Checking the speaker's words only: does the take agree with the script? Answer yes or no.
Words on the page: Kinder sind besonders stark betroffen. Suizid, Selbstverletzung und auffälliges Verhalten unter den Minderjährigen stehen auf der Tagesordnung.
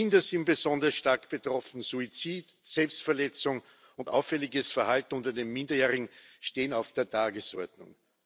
yes